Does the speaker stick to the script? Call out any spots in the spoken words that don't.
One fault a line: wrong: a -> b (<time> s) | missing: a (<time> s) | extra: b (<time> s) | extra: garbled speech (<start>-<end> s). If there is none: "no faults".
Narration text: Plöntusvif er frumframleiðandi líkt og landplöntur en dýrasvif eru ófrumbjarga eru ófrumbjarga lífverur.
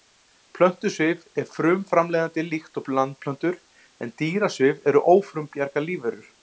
missing: eru ófrumbjarga (5.9 s)